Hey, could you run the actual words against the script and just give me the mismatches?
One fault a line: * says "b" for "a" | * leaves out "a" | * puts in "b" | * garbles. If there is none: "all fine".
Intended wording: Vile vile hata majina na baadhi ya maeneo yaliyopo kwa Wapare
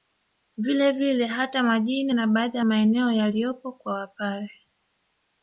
all fine